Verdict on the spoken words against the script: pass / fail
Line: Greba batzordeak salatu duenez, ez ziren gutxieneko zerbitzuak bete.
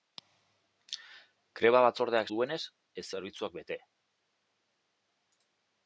fail